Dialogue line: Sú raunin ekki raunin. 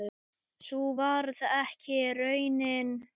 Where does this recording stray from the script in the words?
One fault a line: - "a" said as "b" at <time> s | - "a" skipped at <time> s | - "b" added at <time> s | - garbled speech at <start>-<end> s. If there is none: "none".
- "raunin" said as "varð" at 1.0 s